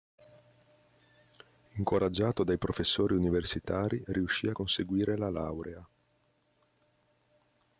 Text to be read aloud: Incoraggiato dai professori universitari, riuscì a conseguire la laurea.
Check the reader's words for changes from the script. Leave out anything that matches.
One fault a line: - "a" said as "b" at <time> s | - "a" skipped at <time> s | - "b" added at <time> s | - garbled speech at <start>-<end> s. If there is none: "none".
none